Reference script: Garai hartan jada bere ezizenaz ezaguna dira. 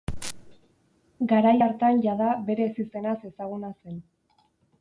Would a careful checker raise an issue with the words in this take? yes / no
yes